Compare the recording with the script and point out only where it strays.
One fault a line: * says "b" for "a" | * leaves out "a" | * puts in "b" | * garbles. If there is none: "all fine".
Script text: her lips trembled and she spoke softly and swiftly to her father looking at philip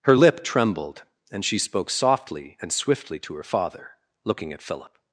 * says "lip" for "lips"